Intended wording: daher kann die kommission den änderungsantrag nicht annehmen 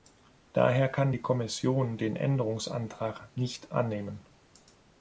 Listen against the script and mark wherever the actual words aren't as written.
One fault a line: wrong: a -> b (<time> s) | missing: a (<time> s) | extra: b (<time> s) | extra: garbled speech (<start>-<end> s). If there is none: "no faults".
no faults